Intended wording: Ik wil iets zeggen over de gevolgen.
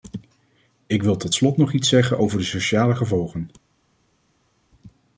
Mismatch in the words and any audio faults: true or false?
true